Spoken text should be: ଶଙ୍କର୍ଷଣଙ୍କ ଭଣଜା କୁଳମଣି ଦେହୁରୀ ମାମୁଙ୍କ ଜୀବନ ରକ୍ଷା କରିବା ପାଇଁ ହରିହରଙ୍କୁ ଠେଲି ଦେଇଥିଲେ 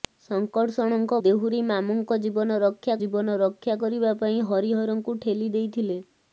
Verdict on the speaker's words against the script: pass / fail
fail